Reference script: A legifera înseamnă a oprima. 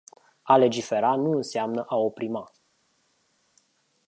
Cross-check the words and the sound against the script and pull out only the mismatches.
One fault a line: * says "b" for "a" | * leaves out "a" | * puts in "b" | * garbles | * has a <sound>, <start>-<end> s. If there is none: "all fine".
* puts in "nu"